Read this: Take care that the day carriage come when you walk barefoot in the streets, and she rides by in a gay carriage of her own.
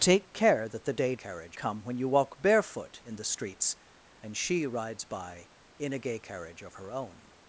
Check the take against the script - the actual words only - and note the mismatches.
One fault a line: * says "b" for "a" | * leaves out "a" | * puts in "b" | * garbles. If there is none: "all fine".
all fine